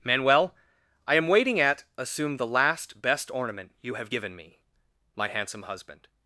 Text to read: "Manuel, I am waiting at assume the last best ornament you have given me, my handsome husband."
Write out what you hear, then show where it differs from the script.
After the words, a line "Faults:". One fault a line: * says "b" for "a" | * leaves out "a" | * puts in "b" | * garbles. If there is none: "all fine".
"Manuel, I am waiting at assume the last best ornament you have given me, my handsome husband."
Faults:
all fine